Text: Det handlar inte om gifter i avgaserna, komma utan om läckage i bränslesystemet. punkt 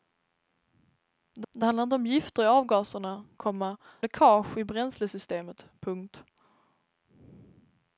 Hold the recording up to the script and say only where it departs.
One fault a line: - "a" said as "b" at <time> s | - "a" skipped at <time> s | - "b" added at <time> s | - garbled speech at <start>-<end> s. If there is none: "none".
- "det" added at 1.5 s
- "utan om" skipped at 3.8 s